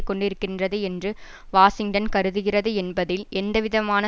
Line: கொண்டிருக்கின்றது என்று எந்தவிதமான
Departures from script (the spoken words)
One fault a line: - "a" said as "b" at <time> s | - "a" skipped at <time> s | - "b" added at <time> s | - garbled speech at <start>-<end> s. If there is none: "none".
- "வாஷிங்டன் கருதுகிறது என்பதில்" added at 1.5 s